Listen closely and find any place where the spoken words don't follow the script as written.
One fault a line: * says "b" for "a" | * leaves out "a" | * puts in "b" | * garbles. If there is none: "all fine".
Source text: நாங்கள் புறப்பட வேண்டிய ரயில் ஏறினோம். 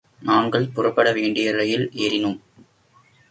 all fine